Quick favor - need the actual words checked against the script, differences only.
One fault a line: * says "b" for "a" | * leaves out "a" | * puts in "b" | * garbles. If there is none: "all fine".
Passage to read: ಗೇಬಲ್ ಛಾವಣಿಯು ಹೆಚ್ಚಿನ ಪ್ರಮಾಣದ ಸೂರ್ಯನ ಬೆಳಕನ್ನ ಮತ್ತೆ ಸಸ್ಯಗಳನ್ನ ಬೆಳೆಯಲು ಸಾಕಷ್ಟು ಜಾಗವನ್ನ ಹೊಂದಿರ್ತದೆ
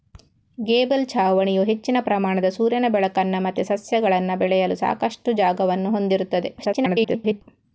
* garbles